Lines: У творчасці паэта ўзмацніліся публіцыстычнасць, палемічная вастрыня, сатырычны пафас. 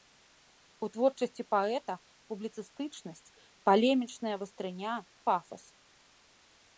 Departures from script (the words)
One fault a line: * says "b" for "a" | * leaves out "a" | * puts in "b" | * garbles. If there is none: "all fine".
* leaves out "ўзмацніліся"
* leaves out "сатырычны"